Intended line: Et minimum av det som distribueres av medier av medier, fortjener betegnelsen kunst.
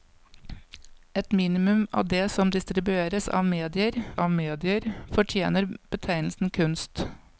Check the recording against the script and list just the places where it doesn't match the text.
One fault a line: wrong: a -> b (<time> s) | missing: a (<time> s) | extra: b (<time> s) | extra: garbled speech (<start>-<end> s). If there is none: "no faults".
no faults